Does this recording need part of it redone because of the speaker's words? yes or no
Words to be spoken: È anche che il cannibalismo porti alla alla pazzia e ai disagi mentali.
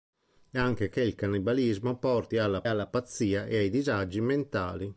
no